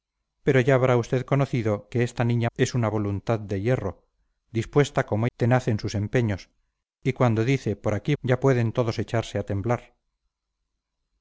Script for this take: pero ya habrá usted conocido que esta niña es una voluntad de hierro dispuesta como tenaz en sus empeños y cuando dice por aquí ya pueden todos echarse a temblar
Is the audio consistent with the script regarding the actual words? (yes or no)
yes